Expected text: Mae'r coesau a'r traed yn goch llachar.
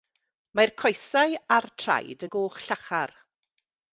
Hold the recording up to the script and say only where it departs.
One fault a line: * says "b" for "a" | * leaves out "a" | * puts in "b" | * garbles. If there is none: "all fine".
all fine